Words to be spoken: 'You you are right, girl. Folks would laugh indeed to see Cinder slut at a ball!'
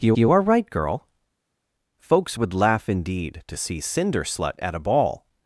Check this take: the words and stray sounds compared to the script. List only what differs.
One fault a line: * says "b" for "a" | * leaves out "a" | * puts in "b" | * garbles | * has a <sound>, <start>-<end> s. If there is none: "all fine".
all fine